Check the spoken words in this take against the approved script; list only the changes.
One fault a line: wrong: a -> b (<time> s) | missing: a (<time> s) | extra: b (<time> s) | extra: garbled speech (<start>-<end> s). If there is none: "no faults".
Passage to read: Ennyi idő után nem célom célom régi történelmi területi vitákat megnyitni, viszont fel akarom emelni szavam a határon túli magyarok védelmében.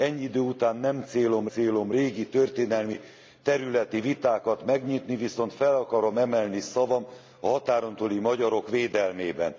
no faults